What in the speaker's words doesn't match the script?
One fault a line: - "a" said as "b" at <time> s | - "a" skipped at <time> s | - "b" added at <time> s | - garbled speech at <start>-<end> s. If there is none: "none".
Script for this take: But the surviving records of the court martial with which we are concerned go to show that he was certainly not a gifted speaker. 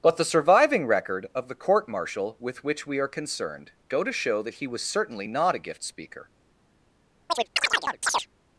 - "records" said as "record" at 0.9 s
- "gifted" said as "gift" at 5.6 s